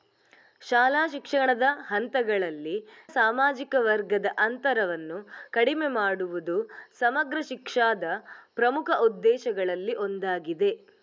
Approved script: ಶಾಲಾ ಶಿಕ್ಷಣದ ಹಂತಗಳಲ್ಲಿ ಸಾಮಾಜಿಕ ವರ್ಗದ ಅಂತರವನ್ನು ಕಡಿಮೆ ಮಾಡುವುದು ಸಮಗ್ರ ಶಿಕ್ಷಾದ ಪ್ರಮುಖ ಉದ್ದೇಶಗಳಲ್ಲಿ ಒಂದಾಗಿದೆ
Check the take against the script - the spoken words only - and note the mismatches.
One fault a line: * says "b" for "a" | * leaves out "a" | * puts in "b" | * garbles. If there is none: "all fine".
all fine